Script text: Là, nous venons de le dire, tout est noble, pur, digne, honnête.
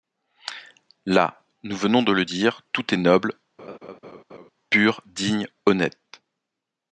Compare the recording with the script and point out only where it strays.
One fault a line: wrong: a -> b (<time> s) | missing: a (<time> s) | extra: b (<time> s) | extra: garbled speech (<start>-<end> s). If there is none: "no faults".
no faults